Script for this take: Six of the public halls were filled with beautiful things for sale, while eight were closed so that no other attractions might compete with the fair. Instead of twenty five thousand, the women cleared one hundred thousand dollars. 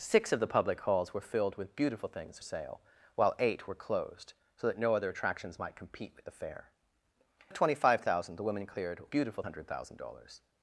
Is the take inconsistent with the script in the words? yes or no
yes